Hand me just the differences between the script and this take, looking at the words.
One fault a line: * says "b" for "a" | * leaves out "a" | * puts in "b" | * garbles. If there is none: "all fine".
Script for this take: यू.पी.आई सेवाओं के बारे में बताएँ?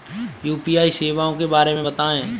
all fine